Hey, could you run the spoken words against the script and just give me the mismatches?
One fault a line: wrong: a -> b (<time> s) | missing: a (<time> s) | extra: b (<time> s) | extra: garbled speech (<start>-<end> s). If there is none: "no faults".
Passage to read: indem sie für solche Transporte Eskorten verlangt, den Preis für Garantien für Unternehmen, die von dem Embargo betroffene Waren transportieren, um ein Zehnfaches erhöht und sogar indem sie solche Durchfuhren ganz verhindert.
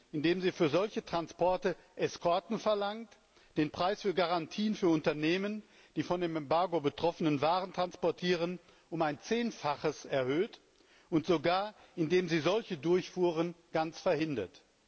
no faults